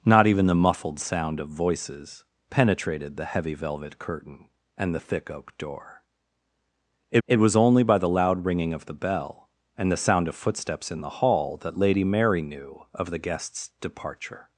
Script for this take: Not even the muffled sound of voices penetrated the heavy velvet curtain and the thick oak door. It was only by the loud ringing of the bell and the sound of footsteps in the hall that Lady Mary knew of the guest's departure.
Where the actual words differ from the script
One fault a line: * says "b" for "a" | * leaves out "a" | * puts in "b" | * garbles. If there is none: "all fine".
* puts in "it"